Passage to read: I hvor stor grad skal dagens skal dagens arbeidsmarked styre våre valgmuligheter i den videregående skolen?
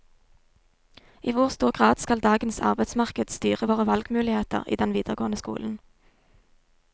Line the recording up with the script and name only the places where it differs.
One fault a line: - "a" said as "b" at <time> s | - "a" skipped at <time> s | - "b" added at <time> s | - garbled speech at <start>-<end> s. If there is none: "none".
- "skal dagens" skipped at 2.6 s